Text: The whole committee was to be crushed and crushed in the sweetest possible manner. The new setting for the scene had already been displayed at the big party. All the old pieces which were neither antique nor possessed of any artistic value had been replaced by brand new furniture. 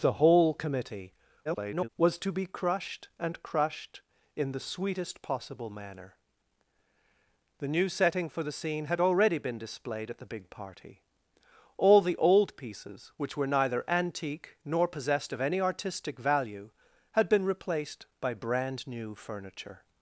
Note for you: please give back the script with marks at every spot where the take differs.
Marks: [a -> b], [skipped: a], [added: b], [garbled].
The whole committee [garbled] was to be crushed and crushed in the sweetest possible manner. The new setting for the scene had already been displayed at the big party. All the old pieces which were neither antique nor possessed of any artistic value had been replaced by brand new furniture.